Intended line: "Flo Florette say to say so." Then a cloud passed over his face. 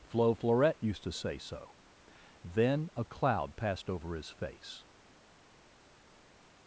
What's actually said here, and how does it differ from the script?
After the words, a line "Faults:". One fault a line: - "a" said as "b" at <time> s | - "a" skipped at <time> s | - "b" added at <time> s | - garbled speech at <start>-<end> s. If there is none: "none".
"Flo Florette used to say so." Then a cloud passed over his face.
Faults:
- "say" said as "used" at 0.8 s